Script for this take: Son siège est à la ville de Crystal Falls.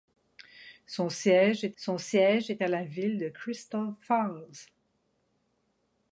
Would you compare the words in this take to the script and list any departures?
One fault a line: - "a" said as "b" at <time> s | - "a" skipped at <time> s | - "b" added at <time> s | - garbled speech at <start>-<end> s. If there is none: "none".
- "son siège est" added at 1.8 s